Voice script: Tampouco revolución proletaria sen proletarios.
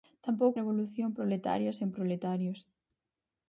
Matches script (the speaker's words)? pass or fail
pass